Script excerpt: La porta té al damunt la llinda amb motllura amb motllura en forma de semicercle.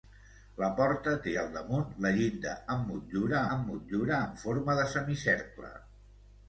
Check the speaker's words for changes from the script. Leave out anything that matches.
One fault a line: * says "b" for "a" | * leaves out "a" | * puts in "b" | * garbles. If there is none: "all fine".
all fine